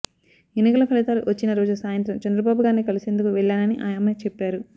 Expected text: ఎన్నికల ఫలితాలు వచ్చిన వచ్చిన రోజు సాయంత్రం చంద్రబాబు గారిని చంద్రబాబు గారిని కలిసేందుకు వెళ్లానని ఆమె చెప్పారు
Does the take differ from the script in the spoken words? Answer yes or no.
yes